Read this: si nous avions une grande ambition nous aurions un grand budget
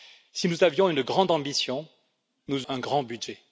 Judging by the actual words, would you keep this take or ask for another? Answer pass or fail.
fail